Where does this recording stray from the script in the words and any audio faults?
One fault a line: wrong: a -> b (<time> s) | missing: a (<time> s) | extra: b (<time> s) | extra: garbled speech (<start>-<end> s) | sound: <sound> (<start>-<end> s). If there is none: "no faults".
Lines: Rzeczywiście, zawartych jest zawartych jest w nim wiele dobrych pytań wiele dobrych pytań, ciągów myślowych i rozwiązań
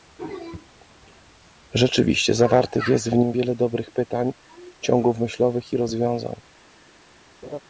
missing: zawartych jest (3.1 s)
missing: wiele dobrych pytań (4.3 s)
sound: laugh (7.4-7.6 s)